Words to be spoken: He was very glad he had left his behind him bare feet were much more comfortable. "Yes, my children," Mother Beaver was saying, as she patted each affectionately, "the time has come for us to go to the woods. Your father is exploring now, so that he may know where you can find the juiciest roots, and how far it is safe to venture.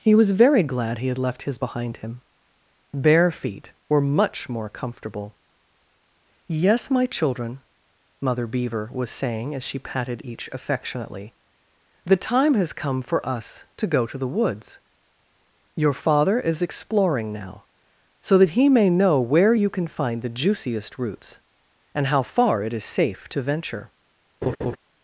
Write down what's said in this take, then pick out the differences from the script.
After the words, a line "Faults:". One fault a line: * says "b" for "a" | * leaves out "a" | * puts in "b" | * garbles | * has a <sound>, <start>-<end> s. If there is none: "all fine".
He was very glad he had left his behind him bare feet were much more comfortable. "Yes, my children," Mother Beaver was saying, as she patted each affectionately, "the time has come for us to go to the woods. Your father is exploring now, so that he may know where you can find the juiciest roots, and how far it is safe to venture.
Faults:
* has a laugh, 24.4-24.8 s